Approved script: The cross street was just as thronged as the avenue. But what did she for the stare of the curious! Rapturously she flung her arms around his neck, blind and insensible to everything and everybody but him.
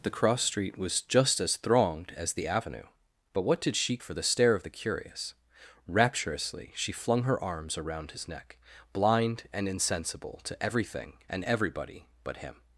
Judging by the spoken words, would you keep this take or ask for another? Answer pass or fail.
pass